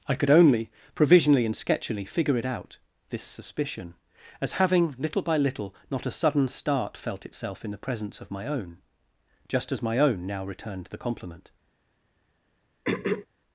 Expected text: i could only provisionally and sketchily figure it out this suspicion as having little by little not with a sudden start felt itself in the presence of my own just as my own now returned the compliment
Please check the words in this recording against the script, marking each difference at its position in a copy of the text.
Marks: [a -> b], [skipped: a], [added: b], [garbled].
i could only provisionally and sketchily figure it out this suspicion as having little by little not [skipped: with] a sudden start felt itself in the presence of my own just as my own now returned the compliment